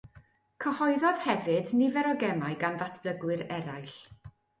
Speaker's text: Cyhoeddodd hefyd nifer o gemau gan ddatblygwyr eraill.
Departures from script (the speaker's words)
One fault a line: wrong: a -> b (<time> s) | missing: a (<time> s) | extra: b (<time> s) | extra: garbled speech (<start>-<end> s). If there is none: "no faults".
no faults